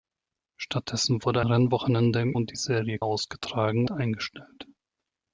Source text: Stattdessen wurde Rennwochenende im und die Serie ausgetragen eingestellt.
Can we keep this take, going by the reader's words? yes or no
yes